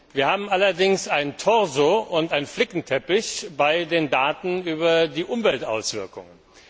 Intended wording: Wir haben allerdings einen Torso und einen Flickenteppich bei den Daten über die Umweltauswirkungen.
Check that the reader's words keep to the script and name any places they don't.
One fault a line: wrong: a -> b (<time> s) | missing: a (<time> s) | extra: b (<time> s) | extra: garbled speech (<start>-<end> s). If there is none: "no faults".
no faults